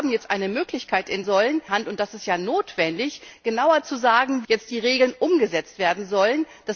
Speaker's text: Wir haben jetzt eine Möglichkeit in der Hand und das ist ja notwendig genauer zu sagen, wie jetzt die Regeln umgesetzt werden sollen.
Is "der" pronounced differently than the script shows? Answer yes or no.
yes